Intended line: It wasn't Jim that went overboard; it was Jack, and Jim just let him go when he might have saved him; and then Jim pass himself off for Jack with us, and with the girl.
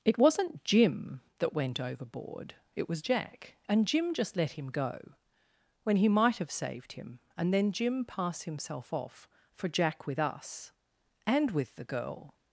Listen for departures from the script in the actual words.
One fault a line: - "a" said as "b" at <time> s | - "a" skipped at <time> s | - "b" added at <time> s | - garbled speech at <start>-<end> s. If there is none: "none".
none